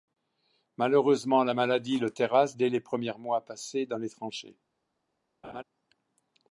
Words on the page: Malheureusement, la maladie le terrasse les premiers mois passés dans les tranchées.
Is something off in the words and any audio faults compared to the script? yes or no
yes